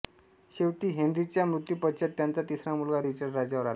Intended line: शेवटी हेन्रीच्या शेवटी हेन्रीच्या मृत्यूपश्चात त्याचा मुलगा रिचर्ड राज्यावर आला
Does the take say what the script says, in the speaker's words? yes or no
no